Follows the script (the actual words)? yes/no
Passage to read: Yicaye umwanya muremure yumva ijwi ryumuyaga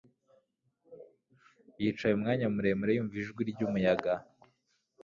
yes